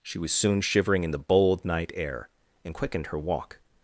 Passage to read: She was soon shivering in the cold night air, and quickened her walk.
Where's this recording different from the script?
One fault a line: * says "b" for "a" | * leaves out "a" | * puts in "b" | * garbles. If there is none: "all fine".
* says "bold" for "cold"